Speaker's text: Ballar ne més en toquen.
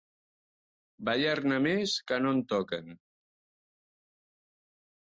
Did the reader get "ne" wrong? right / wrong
right